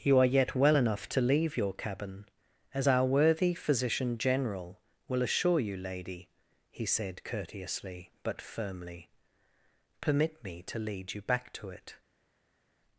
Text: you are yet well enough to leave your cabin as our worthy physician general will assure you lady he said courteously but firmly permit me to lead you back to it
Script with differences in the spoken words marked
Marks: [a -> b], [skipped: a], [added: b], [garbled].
you are yet well enough to leave your cabin as our worthy physician general will assure you lady he said courteously but firmly permit me to lead you back to it